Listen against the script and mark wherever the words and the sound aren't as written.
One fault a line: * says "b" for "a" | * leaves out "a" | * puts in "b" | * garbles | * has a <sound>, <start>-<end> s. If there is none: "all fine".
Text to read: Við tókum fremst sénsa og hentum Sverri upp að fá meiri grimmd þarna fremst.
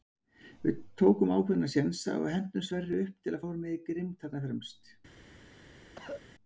* says "ákveðna" for "fremst"
* puts in "til"
* has a cough, 6.0-6.2 s